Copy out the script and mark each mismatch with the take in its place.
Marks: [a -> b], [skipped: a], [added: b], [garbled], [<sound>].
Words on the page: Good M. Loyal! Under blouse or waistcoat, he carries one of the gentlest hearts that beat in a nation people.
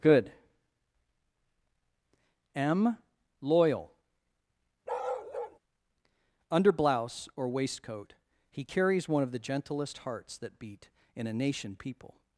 Good M. Loyal! [bark] Under blouse or waistcoat, he carries one of the gentlest hearts that beat in a nation people.